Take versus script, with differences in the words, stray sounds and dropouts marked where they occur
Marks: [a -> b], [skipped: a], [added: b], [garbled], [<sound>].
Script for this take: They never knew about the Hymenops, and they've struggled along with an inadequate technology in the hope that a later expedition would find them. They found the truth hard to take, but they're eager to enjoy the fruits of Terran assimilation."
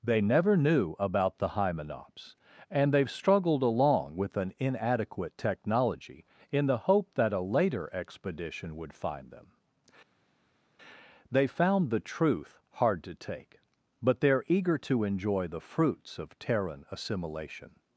They never knew about the Hymenops, and they've struggled along with an inadequate technology in the hope that a later expedition would find them. They found the truth hard to take, but they're eager to enjoy the fruits of Terran assimilation."